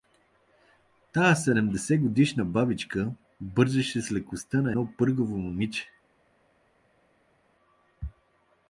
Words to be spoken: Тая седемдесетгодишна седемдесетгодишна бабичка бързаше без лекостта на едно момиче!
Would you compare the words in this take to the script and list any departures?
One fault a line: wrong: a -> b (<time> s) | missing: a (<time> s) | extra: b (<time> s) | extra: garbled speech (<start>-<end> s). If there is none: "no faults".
missing: седемдесетгодишна (2.5 s)
wrong: без -> с (4.0 s)
extra: пъргаво (5.0 s)